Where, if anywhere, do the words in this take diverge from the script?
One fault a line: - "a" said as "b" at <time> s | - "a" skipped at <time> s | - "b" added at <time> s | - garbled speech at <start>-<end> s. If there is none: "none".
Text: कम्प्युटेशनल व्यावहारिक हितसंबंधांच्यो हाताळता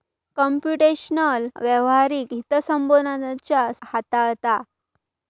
none